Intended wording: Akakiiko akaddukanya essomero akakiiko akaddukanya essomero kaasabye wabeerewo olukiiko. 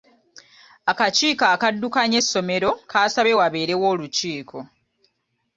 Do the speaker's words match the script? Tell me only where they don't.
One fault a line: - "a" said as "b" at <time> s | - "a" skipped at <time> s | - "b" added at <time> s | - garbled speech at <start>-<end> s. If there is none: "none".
- "akakiiko akaddukanya essomero" skipped at 2.7 s